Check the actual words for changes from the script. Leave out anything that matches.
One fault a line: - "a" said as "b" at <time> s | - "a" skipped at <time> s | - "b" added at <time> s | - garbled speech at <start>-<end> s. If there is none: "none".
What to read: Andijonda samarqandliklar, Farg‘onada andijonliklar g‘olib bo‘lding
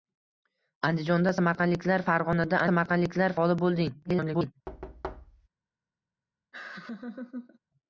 - "andijonliklar" said as "samarqandliklar" at 2.7 s
- garbled speech at 4.0-4.5 s